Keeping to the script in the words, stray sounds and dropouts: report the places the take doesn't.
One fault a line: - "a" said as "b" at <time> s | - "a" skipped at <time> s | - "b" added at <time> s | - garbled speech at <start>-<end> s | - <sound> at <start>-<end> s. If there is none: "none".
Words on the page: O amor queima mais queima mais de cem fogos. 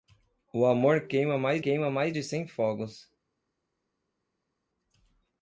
none